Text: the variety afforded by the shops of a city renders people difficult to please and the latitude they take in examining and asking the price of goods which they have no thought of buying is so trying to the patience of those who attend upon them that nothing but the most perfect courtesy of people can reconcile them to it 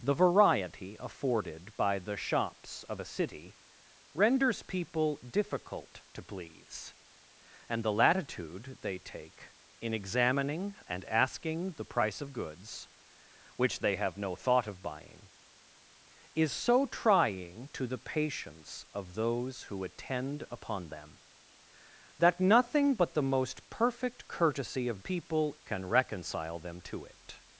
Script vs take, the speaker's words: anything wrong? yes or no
no